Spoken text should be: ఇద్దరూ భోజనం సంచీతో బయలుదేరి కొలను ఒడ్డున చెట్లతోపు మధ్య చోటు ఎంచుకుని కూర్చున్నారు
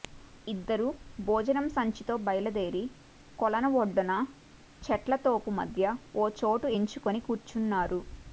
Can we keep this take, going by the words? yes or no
no